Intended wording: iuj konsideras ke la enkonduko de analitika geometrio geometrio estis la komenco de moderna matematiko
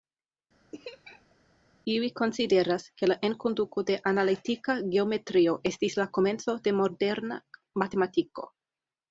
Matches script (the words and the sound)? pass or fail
fail